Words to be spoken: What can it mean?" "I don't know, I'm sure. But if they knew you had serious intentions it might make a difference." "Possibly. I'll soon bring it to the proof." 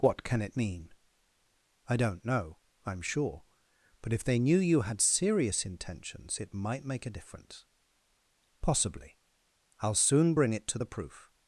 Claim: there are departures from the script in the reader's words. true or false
false